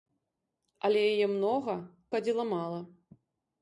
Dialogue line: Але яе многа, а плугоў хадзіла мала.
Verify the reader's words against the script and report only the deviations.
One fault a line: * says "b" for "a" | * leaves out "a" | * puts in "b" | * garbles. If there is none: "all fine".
* leaves out "а плугоў"